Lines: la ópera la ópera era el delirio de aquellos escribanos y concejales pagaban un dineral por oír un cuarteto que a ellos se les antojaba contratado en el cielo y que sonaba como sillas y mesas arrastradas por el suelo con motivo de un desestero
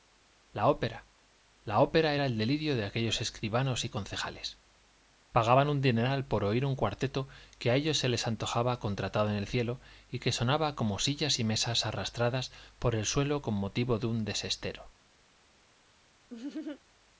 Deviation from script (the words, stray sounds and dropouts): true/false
true